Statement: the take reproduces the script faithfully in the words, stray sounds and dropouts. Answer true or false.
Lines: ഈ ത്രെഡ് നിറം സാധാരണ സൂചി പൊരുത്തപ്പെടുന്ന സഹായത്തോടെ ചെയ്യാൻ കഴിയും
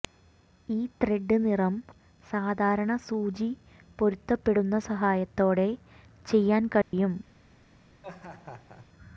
false